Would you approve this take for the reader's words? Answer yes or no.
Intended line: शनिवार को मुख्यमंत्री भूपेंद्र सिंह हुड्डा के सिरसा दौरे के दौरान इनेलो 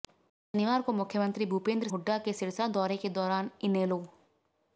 no